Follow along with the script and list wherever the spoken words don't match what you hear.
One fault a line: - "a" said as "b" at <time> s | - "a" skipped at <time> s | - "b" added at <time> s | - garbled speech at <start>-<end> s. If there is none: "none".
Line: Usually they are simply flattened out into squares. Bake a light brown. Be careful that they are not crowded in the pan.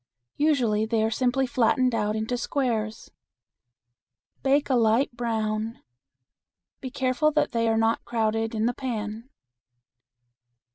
none